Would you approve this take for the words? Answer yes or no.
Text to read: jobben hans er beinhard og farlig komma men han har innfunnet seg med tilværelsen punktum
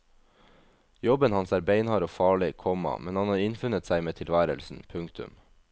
yes